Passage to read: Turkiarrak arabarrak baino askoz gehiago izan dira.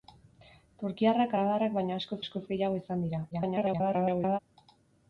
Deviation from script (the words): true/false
true